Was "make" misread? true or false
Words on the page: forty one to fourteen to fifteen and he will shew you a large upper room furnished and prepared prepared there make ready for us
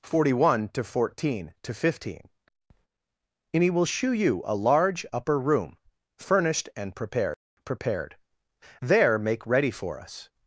false